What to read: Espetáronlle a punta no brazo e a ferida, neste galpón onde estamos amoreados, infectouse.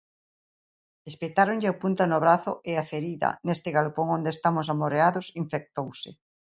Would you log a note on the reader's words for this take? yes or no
no